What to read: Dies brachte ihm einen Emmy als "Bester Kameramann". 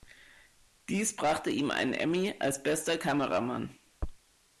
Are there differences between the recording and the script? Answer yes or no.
no